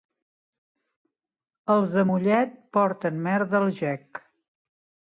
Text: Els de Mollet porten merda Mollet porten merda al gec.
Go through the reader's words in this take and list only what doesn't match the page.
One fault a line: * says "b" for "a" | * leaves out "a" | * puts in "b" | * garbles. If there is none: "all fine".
* leaves out "Mollet porten merda"